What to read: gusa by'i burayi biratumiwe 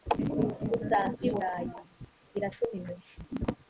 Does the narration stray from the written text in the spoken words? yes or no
no